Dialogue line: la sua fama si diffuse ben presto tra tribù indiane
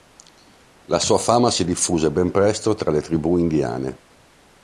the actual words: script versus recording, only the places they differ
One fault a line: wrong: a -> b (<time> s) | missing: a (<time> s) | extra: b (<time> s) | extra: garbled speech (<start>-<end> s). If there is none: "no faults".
extra: le (2.9 s)